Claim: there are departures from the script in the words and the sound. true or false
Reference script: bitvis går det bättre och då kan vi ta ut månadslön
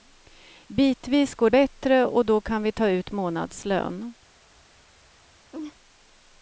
true